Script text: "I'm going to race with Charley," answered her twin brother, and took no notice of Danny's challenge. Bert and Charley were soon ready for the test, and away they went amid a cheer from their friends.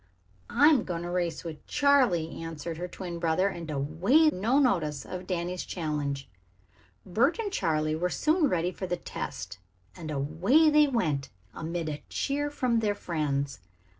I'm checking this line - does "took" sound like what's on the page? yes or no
no